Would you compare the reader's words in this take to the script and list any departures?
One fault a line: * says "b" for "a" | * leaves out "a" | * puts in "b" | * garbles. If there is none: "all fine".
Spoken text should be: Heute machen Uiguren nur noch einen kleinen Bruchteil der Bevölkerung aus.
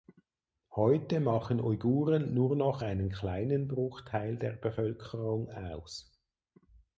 all fine